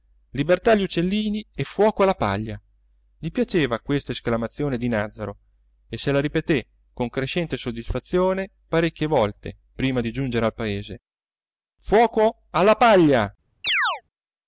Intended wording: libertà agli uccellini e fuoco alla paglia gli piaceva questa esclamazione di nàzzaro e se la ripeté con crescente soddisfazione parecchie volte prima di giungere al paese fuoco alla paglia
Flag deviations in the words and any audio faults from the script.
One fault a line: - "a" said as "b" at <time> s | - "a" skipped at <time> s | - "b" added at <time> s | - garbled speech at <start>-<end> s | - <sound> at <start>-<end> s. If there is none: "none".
- chirp at 13.6-14.0 s